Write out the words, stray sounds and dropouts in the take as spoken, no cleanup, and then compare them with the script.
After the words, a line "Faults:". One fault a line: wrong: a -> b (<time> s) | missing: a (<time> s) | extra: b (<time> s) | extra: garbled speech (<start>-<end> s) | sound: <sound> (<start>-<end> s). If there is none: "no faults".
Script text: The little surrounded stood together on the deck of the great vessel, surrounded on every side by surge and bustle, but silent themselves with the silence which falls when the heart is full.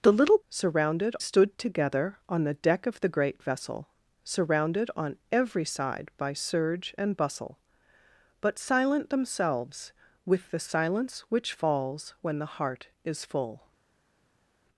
The little surrounded stood together on the deck of the great vessel, surrounded on every side by surge and bustle, but silent themselves with the silence which falls when the heart is full.
Faults:
no faults